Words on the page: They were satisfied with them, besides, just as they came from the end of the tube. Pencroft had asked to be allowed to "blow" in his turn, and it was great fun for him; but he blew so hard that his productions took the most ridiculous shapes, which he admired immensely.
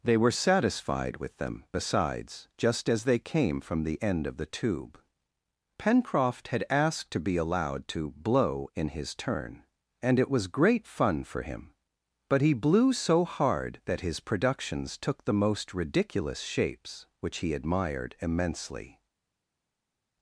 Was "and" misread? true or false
false